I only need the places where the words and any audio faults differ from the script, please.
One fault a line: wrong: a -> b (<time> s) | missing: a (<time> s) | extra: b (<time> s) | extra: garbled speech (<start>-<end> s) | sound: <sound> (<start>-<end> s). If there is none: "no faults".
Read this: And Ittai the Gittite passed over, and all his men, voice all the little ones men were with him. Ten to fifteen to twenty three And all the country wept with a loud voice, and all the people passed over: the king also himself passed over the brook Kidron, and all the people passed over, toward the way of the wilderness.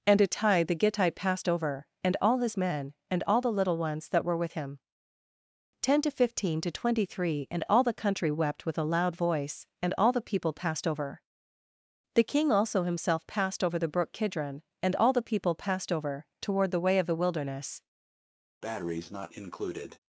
wrong: voice -> and (3.1 s)
wrong: men -> that (4.1 s)
sound: breath (18.6-20.0 s)